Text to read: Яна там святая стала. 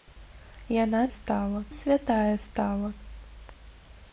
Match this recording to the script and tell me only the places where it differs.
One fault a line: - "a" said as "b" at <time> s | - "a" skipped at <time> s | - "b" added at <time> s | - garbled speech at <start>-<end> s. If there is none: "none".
- "там" said as "стала" at 1.1 s